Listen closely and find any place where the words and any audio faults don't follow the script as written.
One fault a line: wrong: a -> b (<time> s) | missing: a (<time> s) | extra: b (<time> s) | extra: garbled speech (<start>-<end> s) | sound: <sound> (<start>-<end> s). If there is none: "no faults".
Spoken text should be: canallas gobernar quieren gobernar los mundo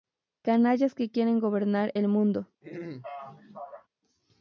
wrong: gobernar -> que (0.9 s)
wrong: los -> el (1.9 s)
sound: throat clearing (2.6-3.9 s)